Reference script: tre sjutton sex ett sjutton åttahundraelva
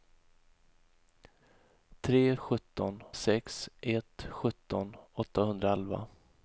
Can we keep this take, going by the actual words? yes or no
yes